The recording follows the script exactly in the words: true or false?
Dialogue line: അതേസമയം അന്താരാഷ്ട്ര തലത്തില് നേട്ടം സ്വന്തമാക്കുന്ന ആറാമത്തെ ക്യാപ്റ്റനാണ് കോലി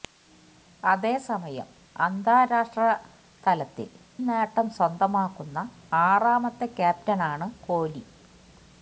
true